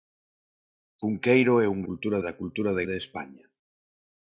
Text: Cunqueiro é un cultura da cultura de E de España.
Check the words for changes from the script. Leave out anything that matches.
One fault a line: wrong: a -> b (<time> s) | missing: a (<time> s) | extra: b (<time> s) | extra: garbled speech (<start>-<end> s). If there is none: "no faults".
no faults